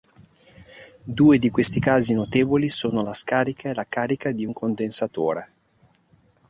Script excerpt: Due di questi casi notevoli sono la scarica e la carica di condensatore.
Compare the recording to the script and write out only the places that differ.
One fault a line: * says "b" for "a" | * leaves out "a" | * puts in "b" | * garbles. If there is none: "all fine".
* puts in "un"